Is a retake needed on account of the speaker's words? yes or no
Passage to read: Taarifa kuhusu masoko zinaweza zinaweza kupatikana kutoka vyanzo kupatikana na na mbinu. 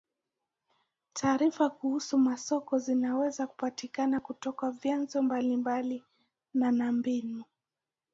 yes